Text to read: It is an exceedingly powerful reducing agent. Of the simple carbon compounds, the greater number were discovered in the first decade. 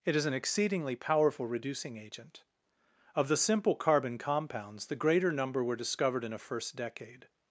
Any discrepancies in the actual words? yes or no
yes